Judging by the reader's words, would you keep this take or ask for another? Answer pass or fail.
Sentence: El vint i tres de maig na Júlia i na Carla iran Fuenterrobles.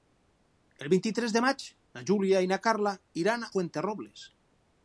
pass